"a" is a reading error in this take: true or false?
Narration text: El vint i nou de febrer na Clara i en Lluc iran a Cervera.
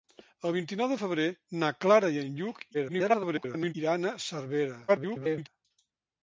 false